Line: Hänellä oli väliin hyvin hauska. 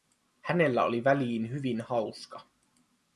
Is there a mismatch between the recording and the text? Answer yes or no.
no